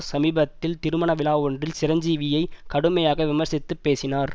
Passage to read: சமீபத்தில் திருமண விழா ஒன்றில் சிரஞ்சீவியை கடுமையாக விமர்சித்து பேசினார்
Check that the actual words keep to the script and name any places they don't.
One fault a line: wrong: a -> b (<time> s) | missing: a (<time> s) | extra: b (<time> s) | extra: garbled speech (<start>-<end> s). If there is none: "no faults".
no faults